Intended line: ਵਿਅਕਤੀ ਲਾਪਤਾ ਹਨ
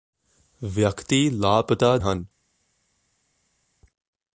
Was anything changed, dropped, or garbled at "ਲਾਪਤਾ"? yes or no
no